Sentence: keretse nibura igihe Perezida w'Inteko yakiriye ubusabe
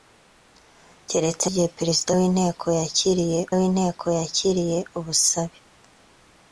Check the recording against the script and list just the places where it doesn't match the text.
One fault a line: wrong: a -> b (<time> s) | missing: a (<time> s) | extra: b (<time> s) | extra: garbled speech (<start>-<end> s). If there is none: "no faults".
missing: nibura (1.5 s)
extra: w'Inteko yakiriye (3.6 s)